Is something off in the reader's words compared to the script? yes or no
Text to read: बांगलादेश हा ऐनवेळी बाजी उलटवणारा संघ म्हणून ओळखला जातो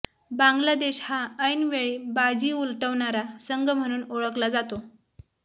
no